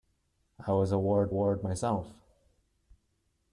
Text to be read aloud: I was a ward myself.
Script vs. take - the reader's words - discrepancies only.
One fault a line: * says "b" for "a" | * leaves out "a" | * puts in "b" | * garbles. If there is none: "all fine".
* puts in "ward"